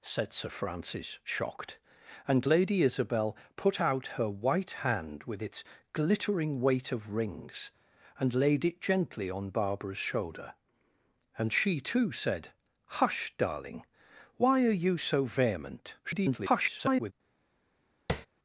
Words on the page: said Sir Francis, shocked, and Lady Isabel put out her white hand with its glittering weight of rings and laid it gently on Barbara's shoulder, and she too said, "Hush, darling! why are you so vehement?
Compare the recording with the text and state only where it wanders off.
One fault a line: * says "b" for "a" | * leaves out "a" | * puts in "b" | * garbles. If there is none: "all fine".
* garbles